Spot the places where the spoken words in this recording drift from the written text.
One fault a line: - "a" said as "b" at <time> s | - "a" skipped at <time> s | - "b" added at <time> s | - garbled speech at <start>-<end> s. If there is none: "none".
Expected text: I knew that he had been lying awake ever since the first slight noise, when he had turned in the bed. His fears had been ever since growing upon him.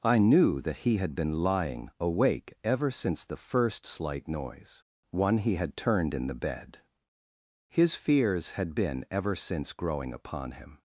- "when" said as "one" at 5.1 s